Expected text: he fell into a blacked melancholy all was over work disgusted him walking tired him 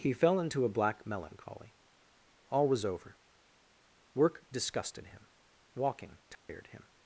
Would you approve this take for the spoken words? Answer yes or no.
no